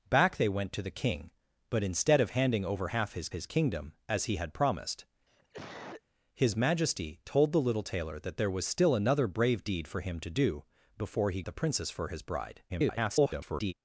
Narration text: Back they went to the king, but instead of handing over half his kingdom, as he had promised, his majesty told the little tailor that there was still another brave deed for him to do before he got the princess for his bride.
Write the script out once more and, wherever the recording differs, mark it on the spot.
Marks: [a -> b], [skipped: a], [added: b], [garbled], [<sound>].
Back they went to the king, but instead of handing over half his [added: his] kingdom, as he had promised, [cough] his majesty told the little tailor that there was still another brave deed for him to do before he [skipped: got] the princess for his bride. [garbled]